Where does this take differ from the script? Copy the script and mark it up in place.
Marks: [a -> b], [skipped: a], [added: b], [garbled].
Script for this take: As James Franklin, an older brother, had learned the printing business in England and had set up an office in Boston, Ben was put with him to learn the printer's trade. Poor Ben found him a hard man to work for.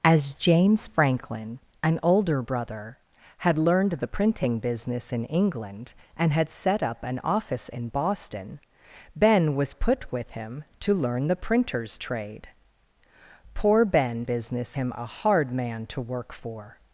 As James Franklin, an older brother, had learned the printing business in England and had set up an office in Boston, Ben was put with him to learn the printer's trade. Poor Ben [found -> business] him a hard man to work for.